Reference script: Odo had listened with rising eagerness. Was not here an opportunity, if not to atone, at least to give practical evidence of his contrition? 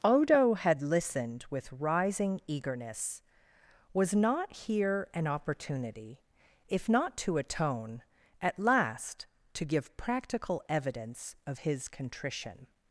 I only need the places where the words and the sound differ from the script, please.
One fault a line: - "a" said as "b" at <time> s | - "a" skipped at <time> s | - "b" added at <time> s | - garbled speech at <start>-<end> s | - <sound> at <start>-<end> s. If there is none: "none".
- "least" said as "last" at 8.6 s